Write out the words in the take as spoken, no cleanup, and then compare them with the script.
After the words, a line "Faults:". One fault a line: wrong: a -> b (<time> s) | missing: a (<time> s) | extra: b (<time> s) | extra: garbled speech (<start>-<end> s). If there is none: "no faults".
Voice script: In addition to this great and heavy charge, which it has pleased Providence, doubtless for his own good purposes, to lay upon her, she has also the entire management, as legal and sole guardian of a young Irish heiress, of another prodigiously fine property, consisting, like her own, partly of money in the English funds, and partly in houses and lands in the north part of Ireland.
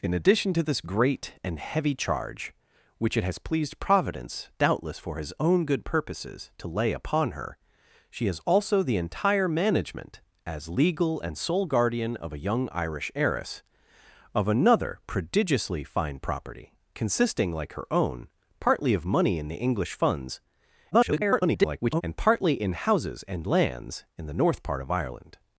In addition to this great and heavy charge, which it has pleased Providence, doubtless for his own good purposes, to lay upon her, she has also the entire management, as legal and sole guardian of a young Irish heiress, of another prodigiously fine property, consisting, like her own, partly of money in the English funds, [garbled] and partly in houses and lands in the north part of Ireland.
Faults:
extra: garbled speech (20.9-22.0 s)